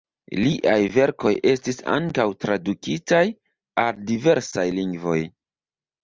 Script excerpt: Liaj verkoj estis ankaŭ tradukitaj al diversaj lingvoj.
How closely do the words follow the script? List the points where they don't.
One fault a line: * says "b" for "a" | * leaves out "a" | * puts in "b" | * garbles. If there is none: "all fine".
all fine